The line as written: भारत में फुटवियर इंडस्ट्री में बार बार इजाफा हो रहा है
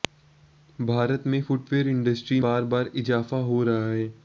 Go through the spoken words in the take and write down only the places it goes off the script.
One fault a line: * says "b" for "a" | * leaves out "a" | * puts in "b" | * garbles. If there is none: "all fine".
* leaves out "में"